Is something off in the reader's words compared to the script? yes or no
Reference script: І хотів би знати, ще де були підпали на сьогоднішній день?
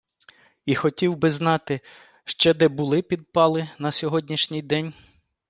no